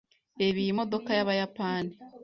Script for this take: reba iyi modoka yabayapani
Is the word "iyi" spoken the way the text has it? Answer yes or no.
yes